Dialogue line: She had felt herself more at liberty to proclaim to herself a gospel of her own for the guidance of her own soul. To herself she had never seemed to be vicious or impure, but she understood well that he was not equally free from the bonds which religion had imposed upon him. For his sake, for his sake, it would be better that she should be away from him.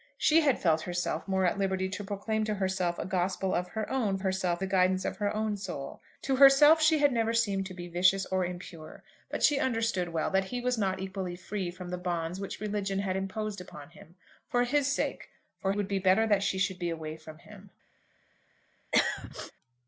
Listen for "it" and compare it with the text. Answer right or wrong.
wrong